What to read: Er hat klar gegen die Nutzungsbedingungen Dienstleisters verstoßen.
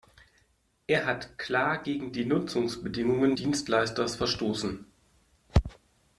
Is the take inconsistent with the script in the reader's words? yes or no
no